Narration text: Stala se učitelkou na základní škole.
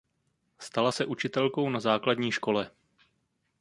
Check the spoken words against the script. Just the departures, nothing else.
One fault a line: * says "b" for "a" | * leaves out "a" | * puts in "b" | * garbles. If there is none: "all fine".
all fine